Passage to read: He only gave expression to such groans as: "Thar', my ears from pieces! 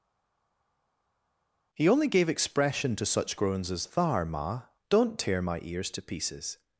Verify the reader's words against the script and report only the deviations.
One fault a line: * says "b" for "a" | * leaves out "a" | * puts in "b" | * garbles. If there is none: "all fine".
* puts in "ma don't tear"
* says "to" for "from"